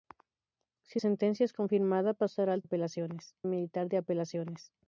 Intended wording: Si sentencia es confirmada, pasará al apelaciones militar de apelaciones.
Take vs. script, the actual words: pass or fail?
pass